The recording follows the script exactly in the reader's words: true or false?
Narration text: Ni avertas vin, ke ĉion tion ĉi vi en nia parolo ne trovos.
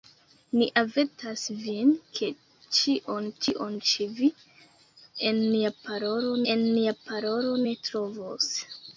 false